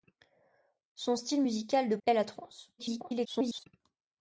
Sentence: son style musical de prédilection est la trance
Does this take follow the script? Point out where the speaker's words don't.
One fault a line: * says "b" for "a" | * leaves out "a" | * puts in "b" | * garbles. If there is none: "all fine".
* leaves out "prédilection"
* garbles